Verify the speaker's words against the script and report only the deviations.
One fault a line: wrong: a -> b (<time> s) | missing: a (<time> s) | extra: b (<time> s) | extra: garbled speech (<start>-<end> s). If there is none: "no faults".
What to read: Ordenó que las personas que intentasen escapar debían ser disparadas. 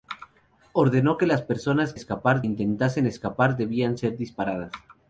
wrong: que -> escapar (1.9 s)